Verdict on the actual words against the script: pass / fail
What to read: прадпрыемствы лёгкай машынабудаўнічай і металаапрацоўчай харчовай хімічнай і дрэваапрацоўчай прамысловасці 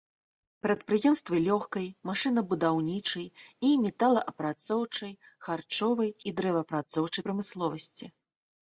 fail